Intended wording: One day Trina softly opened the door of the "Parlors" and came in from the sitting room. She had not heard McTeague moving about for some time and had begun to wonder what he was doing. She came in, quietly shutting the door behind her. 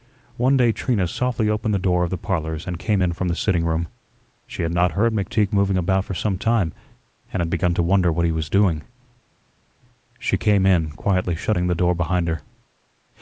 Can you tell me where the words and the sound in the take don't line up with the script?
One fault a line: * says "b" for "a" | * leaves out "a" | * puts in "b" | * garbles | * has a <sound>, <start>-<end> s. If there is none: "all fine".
all fine